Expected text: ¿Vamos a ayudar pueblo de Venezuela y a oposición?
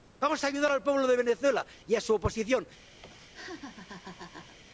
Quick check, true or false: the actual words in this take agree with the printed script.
false